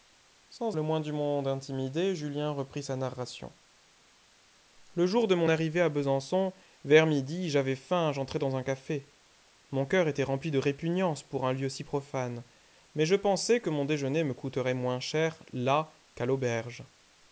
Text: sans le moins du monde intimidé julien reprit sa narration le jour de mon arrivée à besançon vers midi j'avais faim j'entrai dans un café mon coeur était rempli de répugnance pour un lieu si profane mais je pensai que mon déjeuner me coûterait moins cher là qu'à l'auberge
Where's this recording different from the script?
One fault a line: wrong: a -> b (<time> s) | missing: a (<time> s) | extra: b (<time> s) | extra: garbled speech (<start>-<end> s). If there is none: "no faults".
no faults